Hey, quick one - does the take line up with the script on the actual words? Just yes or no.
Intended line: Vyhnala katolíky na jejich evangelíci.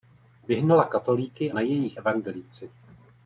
yes